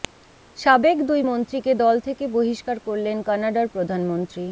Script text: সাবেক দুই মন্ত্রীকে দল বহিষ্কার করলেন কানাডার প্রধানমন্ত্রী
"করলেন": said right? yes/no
yes